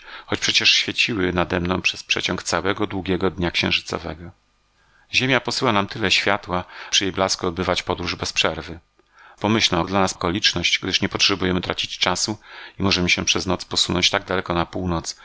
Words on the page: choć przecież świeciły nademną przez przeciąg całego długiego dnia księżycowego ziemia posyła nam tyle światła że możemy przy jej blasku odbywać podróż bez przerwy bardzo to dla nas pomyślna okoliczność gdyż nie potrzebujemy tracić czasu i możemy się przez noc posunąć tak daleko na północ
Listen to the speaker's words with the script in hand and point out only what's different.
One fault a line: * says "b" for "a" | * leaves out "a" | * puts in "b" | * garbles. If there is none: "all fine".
* leaves out "że możemy"
* says "pomyślna" for "bardzo"
* leaves out "pomyślna"